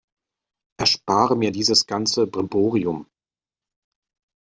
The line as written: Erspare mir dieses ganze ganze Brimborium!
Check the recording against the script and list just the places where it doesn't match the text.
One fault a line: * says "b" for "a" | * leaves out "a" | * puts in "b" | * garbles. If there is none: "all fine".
* leaves out "ganze"